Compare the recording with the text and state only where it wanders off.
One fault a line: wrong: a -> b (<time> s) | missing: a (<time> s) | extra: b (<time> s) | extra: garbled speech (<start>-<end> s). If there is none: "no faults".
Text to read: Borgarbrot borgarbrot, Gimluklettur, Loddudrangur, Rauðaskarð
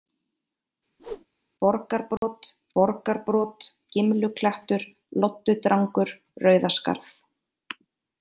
no faults